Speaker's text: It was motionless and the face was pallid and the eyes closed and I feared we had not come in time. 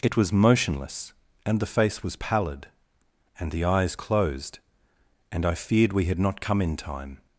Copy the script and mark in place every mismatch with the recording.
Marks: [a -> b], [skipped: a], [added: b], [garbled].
It was motionless and the face was pallid and the eyes closed and I feared we had not come in time.